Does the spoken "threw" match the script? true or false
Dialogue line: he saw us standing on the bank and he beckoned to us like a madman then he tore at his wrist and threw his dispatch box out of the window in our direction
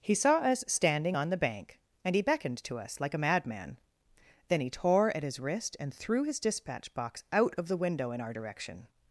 true